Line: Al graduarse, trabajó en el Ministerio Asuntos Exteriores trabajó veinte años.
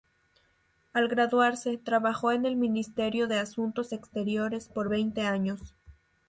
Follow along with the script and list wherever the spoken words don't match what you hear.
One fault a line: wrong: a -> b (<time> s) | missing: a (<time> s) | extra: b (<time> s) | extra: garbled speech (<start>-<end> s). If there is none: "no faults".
extra: de (3.3 s)
wrong: trabajó -> por (4.7 s)